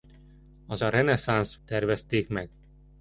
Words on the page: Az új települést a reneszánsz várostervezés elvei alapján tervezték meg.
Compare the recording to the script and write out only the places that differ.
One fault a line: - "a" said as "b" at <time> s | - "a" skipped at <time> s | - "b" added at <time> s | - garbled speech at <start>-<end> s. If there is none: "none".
- "új települést" skipped at 0.8 s
- "várostervezés elvei alapján" skipped at 1.6 s